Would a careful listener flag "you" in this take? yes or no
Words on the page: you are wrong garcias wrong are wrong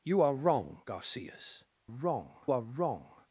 no